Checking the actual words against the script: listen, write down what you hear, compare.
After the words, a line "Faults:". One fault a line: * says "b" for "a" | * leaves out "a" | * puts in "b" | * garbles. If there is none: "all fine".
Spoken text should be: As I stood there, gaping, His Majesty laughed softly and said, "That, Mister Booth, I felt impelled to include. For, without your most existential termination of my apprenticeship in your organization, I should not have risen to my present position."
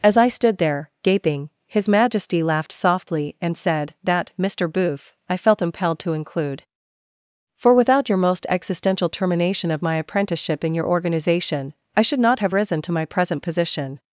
As I stood there, gaping, His Majesty laughed softly and said, "That, Mister Booth, I felt impelled to include. For, without your most existential termination of my apprenticeship in your organization, I should not have risen to my present position."
Faults:
all fine